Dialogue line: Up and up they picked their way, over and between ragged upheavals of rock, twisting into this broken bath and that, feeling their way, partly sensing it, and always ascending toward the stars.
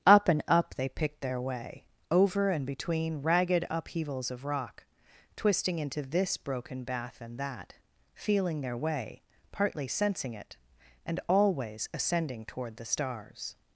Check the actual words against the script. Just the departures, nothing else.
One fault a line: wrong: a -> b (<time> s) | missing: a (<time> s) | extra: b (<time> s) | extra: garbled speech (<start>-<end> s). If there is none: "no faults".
no faults